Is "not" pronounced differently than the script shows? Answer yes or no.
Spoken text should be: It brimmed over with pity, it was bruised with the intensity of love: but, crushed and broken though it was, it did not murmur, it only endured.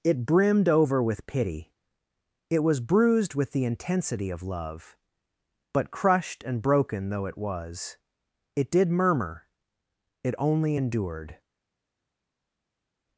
yes